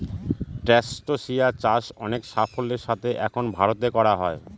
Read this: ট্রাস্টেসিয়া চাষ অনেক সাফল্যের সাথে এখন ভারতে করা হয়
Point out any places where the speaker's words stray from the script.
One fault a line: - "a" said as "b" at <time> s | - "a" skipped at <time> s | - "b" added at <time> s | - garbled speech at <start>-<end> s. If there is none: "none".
none